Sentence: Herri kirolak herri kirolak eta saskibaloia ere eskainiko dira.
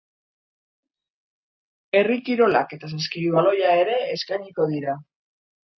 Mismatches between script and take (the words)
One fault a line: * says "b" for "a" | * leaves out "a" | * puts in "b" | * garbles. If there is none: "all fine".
* leaves out "herri kirolak"